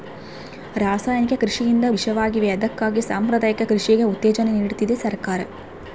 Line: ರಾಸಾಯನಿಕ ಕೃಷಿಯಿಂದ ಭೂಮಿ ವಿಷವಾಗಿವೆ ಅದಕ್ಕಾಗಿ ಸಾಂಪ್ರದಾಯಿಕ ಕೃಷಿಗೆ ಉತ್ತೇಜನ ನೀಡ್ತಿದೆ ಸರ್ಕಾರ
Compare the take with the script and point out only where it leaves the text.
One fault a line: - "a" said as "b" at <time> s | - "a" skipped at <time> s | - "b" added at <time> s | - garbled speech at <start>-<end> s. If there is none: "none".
- "ಭೂಮಿ" skipped at 1.9 s